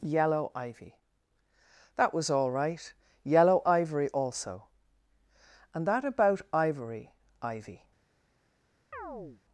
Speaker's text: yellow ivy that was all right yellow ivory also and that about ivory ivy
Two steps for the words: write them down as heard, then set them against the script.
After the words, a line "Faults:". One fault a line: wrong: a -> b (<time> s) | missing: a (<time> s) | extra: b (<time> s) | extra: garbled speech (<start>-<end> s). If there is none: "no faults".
yellow ivy that was all right yellow ivory also and that about ivory ivy
Faults:
no faults